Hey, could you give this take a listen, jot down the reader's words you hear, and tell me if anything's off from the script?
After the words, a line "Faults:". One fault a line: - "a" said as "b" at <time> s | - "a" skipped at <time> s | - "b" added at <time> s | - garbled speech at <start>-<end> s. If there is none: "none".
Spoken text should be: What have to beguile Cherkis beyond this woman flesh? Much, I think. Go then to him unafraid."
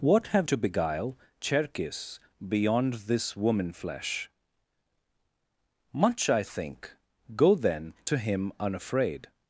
What have to beguile Cherkis beyond this woman flesh? Much, I think. Go then to him unafraid."
Faults:
none